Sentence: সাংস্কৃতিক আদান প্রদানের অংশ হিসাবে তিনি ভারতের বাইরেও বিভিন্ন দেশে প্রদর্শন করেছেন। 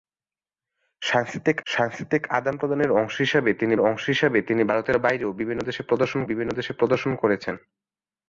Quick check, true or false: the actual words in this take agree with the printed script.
false